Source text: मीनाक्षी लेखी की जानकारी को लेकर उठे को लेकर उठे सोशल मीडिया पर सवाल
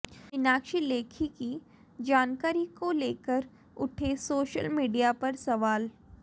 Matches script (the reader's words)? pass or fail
fail